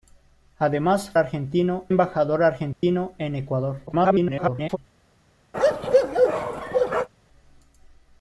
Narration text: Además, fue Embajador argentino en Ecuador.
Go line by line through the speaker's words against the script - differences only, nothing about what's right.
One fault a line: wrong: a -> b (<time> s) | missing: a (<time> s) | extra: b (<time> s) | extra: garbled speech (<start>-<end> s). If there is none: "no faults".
wrong: fue -> argentino (1.2 s)
extra: garbled speech (3.9-4.8 s)